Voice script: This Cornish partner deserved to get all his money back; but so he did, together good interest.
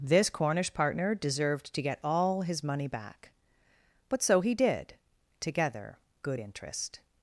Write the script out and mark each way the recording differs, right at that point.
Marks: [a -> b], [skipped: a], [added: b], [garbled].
This Cornish partner deserved to get all his money back; but so he did, together good interest.